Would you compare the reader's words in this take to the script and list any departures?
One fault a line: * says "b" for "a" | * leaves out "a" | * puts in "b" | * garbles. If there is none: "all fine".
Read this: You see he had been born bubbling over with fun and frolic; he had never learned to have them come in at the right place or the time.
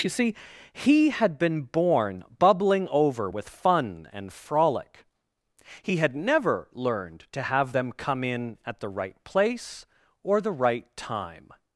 * puts in "right"